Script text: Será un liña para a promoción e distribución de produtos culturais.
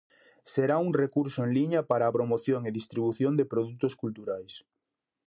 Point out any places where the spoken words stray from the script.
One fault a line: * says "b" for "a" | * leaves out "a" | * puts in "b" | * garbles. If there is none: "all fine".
* puts in "recurso en"